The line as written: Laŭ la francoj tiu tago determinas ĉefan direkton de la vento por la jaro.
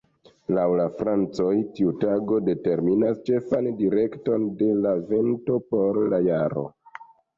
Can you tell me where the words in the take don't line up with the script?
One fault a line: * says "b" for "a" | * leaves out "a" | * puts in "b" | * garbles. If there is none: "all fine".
all fine